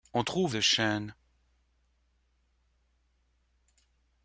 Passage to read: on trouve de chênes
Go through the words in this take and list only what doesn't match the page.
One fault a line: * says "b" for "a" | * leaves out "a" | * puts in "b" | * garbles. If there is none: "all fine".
all fine